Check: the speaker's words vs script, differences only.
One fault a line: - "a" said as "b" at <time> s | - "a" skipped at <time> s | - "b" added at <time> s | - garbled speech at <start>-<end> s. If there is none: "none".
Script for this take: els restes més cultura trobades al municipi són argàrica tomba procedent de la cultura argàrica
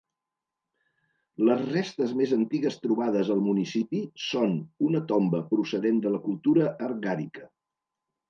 - "els" said as "les" at 1.5 s
- "cultura" said as "antigues" at 2.4 s
- "argàrica" said as "una" at 4.9 s